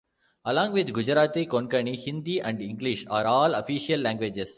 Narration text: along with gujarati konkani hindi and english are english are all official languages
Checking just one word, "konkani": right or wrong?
right